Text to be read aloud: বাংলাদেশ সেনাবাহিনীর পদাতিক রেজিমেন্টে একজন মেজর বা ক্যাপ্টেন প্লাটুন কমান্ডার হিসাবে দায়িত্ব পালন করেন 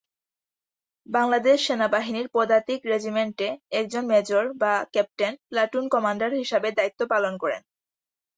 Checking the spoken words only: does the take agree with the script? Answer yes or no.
yes